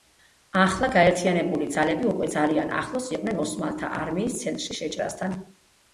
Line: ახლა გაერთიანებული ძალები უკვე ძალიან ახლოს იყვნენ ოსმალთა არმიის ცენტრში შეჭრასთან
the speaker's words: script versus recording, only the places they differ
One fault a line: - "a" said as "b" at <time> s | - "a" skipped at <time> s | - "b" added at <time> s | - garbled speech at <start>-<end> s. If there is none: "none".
none